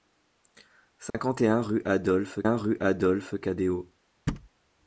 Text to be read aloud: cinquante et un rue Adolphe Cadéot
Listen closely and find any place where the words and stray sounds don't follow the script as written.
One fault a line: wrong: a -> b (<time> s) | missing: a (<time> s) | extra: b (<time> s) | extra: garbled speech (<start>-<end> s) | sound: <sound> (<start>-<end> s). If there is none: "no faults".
sound: dropout (1.1-1.1 s)
extra: un rue Adolphe (2.4 s)
sound: thud (4.3-4.5 s)